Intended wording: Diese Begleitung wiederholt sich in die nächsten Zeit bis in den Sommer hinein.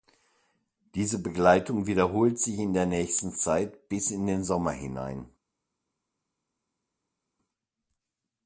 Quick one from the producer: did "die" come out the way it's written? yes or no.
no